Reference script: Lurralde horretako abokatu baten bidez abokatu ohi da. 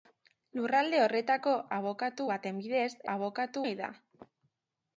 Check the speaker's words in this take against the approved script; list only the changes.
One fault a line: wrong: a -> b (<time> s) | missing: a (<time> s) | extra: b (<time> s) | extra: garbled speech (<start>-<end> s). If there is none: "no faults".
no faults